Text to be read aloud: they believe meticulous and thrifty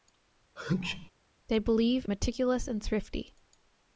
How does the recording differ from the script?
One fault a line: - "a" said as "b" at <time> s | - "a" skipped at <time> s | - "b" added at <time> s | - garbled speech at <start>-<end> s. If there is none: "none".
none